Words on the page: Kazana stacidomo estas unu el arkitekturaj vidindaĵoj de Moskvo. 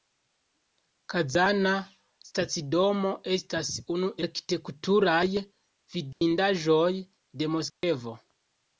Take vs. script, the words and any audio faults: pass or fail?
fail